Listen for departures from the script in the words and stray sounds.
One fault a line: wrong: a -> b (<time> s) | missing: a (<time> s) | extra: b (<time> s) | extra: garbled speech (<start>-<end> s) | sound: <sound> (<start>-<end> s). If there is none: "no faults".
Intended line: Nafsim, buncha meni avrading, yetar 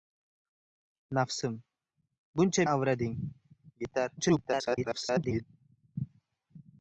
missing: meni (2.6 s)
extra: garbled speech (4.2-5.4 s)